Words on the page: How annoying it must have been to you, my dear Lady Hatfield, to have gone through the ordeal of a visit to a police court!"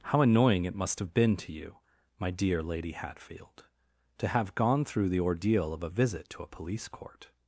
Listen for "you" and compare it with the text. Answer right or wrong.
right